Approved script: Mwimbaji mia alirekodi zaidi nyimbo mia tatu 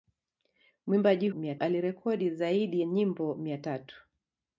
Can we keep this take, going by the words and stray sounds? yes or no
yes